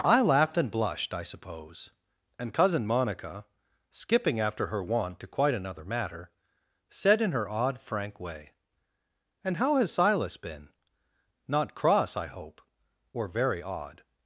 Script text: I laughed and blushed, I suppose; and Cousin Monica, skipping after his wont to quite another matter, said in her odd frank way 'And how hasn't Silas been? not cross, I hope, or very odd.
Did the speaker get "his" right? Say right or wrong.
wrong